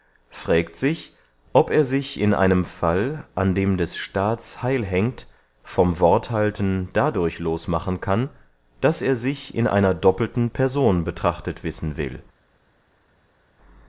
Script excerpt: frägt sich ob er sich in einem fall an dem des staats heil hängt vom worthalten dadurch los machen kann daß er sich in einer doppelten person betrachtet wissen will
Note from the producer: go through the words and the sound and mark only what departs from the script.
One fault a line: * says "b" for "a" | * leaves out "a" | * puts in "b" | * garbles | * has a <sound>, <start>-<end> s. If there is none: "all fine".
all fine